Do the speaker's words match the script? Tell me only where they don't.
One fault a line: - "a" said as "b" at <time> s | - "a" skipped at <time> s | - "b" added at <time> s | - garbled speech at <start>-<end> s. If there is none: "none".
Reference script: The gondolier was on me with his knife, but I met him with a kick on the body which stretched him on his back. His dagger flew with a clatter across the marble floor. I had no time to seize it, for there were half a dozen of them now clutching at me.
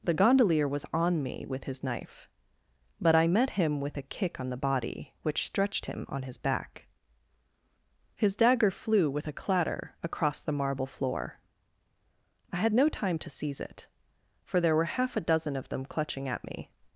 - "now" skipped at 15.8 s